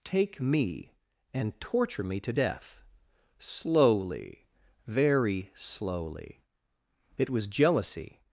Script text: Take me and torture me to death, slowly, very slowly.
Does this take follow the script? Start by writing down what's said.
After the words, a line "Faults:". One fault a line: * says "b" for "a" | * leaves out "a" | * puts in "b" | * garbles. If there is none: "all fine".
Take me and torture me to death, slowly, very slowly. It was jealousy
Faults:
* puts in "It was jealousy"